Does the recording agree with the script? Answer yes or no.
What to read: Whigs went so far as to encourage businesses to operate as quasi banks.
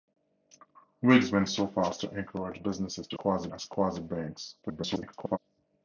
no